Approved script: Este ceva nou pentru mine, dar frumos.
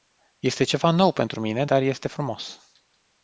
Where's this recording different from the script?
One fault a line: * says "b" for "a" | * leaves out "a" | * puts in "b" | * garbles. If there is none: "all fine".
* puts in "este"